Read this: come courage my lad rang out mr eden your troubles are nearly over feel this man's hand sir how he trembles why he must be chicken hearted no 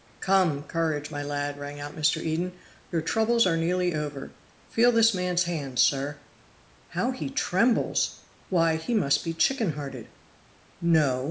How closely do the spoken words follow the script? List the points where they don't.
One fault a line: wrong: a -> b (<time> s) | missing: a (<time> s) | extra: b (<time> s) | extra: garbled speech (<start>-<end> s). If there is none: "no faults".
no faults